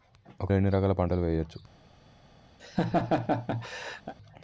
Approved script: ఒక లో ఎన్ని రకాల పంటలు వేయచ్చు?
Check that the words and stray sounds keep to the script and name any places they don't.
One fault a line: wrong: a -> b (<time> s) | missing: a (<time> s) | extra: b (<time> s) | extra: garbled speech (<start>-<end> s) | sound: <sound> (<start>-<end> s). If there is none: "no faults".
sound: laugh (2.6-4.1 s)